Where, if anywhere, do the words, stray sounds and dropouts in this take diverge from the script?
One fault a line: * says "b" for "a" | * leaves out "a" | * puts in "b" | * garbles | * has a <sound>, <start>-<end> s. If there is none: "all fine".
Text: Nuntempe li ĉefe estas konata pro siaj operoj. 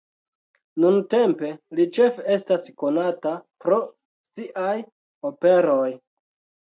all fine